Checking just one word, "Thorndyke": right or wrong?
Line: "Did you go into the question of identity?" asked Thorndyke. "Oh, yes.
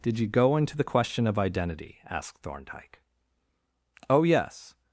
right